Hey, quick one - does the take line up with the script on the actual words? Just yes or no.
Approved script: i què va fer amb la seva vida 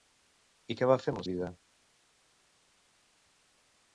no